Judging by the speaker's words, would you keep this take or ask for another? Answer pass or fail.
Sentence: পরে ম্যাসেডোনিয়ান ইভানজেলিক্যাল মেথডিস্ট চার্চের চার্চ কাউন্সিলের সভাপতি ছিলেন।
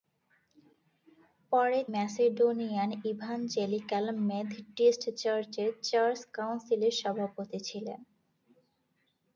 pass